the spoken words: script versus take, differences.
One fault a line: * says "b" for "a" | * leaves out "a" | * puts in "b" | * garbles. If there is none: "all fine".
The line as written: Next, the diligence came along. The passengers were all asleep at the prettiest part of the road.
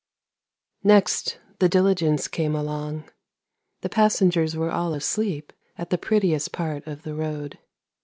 all fine